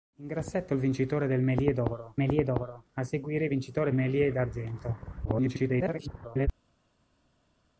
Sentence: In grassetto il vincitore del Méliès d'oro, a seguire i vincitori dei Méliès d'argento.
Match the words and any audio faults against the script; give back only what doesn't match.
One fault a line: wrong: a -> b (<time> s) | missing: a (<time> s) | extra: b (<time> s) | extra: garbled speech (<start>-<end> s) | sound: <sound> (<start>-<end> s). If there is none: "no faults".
extra: Méliès d'oro (2.2 s)
missing: dei (3.9 s)
extra: garbled speech (5.2-6.5 s)